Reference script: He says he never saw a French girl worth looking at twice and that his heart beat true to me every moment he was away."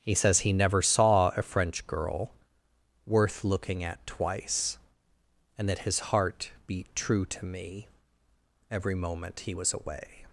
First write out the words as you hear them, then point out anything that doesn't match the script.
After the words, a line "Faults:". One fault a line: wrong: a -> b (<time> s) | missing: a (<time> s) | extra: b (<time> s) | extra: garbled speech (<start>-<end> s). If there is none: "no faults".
He says he never saw a French girl worth looking at twice and that his heart beat true to me every moment he was away."
Faults:
no faults